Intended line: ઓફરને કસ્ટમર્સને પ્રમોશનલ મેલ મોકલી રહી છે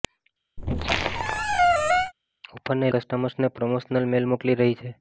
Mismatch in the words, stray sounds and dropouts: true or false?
true